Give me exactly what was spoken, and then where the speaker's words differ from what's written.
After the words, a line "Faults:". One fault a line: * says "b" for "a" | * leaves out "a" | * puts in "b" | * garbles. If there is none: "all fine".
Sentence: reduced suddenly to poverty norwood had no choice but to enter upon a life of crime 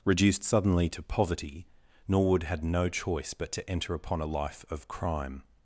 reduced suddenly to poverty norwood had no choice but to enter upon a life of crime
Faults:
all fine